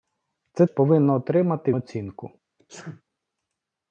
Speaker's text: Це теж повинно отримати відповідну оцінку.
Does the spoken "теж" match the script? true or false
false